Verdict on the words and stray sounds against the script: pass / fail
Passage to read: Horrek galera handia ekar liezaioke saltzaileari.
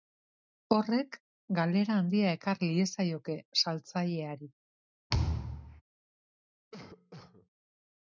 fail